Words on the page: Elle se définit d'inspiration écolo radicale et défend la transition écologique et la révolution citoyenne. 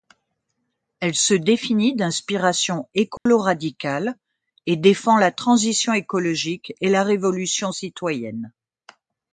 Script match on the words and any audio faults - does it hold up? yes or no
no